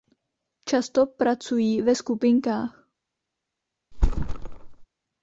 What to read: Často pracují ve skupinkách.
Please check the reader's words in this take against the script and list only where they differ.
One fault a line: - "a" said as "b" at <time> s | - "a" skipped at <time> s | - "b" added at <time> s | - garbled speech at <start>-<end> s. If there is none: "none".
none